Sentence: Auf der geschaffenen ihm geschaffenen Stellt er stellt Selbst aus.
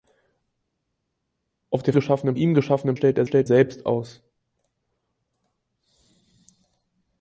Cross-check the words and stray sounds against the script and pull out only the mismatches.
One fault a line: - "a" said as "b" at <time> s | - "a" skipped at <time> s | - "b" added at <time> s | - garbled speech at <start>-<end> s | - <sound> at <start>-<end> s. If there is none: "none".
none